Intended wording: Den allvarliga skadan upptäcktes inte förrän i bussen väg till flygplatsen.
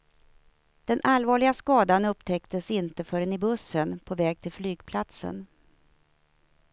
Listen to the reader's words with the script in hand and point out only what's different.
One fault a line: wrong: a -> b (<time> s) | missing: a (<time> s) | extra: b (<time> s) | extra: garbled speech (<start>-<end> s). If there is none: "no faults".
extra: på (4.0 s)